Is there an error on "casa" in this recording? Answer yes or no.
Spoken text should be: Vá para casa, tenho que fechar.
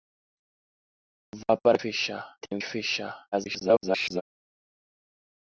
yes